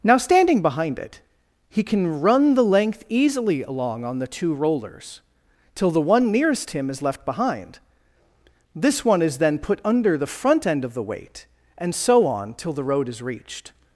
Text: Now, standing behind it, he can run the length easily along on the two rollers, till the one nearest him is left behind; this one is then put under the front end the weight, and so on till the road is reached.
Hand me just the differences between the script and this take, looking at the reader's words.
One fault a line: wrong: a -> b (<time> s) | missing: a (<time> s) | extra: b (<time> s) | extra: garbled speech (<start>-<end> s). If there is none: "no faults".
extra: of (10.8 s)